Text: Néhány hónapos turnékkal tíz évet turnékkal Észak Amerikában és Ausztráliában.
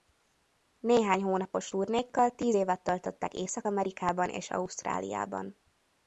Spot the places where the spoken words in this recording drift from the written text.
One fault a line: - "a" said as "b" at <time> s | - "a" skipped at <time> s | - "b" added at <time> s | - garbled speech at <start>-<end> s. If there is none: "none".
- "turnékkal" said as "töltöttek" at 2.8 s